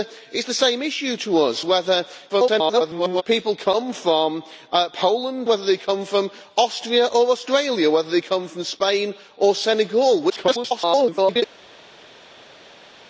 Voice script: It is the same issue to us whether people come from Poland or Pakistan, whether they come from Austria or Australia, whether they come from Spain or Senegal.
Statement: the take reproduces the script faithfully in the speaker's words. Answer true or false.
false